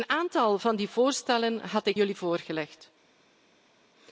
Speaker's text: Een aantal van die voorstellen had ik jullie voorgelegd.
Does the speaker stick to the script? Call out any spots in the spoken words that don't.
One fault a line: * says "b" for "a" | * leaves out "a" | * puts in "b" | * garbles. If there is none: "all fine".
all fine